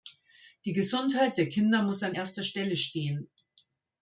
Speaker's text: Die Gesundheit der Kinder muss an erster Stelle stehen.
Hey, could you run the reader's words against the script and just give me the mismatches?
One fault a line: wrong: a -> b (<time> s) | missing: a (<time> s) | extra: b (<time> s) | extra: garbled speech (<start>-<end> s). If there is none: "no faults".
no faults